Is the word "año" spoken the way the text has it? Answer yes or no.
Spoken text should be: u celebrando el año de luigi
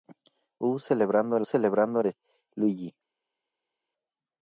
no